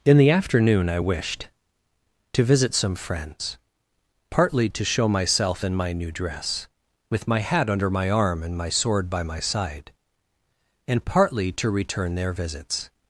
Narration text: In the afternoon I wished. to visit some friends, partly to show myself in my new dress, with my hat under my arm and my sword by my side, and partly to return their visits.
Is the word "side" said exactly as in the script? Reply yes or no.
yes